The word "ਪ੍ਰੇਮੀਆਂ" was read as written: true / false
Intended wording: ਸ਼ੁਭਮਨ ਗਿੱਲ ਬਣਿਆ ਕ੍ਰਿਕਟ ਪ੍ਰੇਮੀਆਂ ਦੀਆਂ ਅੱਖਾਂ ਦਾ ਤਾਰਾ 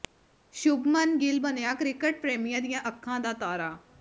true